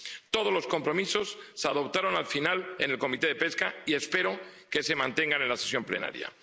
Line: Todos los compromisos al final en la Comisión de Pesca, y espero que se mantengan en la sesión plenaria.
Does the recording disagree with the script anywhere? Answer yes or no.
yes